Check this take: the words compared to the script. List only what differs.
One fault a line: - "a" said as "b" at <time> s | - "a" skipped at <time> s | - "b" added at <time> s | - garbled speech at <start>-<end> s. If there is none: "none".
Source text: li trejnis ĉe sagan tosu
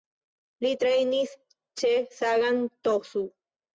none